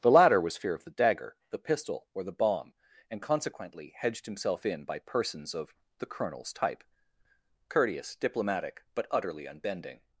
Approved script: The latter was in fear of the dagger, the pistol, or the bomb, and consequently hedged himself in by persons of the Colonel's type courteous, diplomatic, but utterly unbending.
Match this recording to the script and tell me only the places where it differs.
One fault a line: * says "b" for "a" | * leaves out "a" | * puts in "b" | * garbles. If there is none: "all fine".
* leaves out "in"